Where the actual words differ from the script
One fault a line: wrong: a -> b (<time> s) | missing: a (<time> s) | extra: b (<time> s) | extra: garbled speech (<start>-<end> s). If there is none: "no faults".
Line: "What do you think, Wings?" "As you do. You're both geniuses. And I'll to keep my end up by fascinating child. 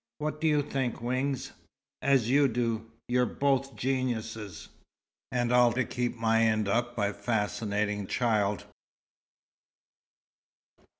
no faults